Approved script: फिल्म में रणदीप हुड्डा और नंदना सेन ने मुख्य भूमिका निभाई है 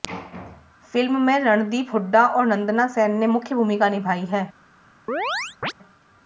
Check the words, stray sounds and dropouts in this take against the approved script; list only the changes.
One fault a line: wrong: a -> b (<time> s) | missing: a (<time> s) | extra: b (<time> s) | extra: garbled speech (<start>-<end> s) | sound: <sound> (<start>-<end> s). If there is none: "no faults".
sound: chirp (5.1-5.7 s)